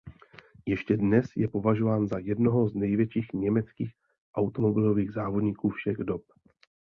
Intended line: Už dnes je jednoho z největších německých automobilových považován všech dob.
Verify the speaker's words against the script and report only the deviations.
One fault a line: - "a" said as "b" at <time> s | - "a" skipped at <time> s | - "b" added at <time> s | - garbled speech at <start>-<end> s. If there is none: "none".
- "Už" said as "Ještě" at 0.7 s
- "považován za" added at 1.5 s
- "považován" said as "závodníků" at 5.1 s